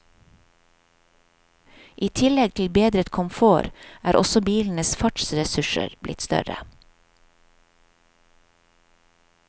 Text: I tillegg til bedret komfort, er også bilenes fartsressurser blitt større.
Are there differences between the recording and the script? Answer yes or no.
no